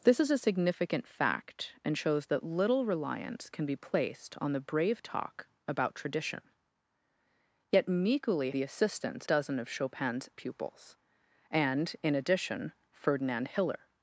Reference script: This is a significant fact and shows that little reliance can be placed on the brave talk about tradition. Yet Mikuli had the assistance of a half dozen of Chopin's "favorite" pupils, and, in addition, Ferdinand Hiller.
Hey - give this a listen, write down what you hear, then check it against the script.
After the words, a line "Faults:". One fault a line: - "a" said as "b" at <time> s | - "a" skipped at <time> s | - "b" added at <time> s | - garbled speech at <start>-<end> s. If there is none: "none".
This is a significant fact and shows that little reliance can be placed on the brave talk about tradition. Yet Mikuli the assistance dozen of Chopin's" "pupils, and, in addition, Ferdinand Hiller.
Faults:
- "had" skipped at 8.5 s
- "of a half" skipped at 9.3 s
- "favorite" skipped at 10.3 s